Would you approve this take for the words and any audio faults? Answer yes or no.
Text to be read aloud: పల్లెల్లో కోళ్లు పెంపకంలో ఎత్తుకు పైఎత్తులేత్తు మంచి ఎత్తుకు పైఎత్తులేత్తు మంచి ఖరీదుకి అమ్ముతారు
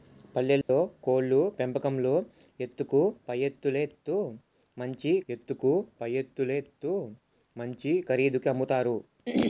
no